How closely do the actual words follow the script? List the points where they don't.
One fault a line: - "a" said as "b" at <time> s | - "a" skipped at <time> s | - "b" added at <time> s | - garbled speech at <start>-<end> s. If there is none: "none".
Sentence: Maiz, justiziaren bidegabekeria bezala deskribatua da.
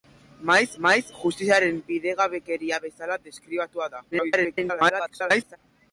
- "maiz" added at 0.8 s
- garbled speech at 4.1-5.6 s